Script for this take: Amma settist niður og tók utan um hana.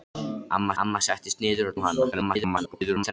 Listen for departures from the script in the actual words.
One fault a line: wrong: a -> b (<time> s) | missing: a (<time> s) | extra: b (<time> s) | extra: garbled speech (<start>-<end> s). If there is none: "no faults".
extra: amma (0.8 s)
missing: tók utan (1.8 s)
extra: garbled speech (2.1-3.1 s)